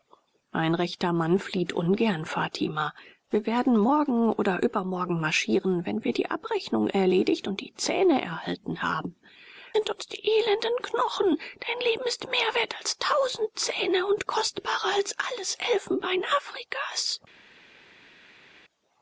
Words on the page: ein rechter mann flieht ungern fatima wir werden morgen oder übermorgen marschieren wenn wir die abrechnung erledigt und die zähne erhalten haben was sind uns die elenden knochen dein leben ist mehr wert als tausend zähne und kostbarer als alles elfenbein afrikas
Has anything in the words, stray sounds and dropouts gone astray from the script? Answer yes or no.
yes